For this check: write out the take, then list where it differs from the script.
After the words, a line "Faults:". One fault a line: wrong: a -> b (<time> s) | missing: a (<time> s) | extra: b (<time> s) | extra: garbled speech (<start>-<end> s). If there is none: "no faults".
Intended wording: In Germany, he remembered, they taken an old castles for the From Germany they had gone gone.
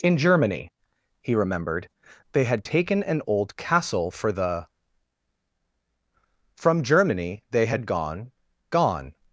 In Germany, he remembered, they had taken an old castle for the From Germany they had gone gone.
Faults:
extra: had (2.4 s)
wrong: castles -> castle (3.6 s)